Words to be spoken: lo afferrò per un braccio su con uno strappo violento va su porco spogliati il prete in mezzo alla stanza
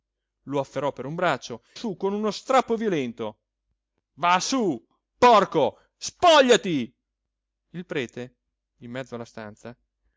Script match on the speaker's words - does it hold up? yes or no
yes